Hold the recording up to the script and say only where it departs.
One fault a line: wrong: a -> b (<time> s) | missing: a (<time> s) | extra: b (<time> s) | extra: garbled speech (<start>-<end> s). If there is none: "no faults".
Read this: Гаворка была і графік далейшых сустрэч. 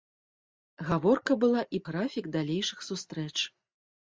no faults